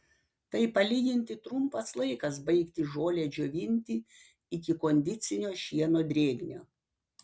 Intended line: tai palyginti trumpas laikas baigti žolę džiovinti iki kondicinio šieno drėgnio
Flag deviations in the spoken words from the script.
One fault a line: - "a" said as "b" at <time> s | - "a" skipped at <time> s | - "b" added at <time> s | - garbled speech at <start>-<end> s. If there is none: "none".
none